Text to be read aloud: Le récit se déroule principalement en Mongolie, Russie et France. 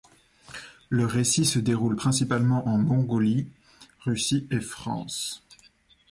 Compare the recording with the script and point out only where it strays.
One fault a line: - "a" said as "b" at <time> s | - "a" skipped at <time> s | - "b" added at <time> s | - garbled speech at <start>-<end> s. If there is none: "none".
none